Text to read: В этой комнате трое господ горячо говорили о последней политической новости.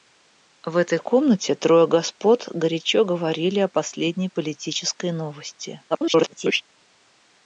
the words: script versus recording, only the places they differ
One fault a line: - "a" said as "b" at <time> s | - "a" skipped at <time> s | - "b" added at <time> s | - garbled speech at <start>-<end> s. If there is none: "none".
- garbled speech at 5.9-6.6 s